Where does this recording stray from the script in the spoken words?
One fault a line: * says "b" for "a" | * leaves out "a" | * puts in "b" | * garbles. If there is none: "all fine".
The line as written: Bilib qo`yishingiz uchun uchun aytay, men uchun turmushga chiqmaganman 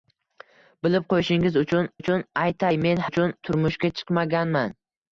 all fine